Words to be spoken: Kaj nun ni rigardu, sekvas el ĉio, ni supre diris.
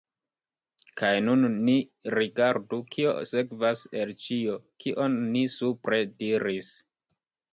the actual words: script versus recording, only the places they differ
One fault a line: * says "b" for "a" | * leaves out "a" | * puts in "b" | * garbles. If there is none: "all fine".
* puts in "kio"
* puts in "kion"